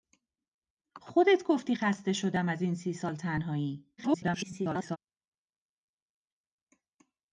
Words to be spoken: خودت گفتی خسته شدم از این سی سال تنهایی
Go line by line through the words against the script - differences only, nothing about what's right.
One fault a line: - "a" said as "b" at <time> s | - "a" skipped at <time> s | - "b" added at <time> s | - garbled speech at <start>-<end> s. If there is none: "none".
- garbled speech at 4.0-5.0 s